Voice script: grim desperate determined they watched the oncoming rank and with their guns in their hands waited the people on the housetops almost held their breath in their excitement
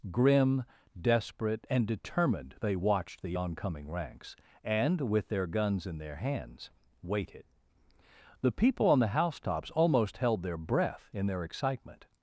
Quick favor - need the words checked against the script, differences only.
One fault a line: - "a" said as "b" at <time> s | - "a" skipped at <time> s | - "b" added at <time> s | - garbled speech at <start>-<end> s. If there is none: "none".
- "and" added at 1.7 s
- "rank" said as "ranks" at 3.9 s